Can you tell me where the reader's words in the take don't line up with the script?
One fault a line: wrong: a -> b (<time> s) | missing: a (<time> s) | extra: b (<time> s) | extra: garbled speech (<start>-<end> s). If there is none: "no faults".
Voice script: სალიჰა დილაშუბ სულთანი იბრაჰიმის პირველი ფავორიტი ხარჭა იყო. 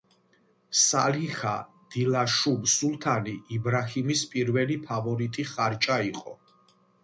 no faults